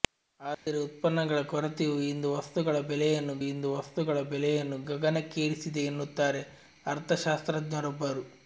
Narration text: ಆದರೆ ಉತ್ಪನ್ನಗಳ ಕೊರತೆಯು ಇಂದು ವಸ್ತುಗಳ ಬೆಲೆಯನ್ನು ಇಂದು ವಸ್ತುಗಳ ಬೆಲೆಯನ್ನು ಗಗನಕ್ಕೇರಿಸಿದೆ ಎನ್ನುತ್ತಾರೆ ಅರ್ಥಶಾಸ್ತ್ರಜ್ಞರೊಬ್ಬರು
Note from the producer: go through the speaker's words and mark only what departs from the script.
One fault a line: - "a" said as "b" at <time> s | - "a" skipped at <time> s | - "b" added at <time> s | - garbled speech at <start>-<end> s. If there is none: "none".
none